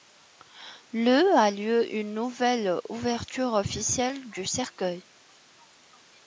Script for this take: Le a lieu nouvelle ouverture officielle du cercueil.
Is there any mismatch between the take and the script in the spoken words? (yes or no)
yes